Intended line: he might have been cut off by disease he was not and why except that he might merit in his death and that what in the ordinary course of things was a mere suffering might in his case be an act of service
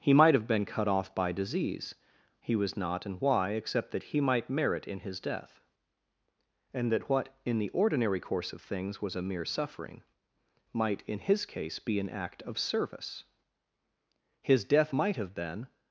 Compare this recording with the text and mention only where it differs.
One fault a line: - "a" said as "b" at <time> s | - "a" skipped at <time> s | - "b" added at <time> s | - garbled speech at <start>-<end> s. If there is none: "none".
- "his death might have been" added at 14.4 s